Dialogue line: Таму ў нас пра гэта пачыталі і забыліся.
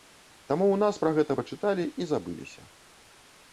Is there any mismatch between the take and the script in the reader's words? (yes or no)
no